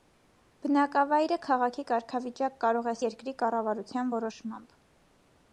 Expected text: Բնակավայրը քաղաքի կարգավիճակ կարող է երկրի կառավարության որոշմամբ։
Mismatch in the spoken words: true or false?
false